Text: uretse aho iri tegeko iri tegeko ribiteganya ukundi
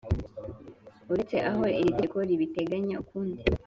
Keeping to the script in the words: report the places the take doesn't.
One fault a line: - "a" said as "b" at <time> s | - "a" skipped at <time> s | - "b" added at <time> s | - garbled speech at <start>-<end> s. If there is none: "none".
- "iri tegeko" skipped at 2.2 s